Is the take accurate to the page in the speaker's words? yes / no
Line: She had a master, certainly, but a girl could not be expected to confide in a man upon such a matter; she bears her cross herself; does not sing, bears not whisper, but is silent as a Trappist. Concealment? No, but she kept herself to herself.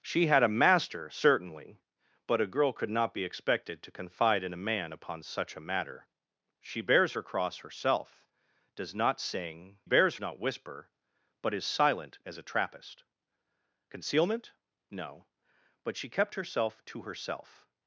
yes